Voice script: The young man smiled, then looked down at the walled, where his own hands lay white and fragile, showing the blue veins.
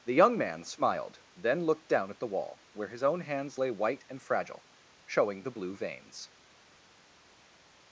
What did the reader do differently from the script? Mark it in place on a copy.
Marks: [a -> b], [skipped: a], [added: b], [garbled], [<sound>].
The young man smiled, then looked down at the [walled, -> wall] where his own hands lay white and fragile, showing the blue veins.